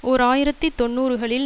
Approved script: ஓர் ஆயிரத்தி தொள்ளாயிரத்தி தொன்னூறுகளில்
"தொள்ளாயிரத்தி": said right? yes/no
no